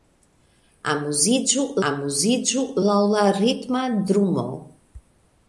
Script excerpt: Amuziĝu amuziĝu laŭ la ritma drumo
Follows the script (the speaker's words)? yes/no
yes